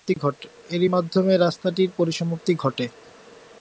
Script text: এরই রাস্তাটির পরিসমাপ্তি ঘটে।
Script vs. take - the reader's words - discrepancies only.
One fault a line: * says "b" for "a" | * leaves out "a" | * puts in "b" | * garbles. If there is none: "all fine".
* puts in "মাধ্যমে"